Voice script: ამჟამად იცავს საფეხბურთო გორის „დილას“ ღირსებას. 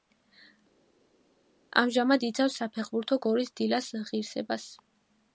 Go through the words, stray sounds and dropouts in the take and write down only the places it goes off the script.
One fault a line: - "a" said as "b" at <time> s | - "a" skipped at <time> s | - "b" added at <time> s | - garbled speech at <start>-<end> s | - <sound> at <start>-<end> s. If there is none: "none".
none